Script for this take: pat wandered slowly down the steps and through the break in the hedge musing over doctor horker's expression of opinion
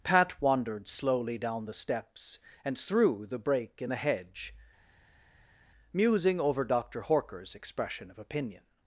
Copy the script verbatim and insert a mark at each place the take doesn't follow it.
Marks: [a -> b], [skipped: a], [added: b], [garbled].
pat wandered slowly down the steps and through the break in the hedge musing over doctor horker's expression of opinion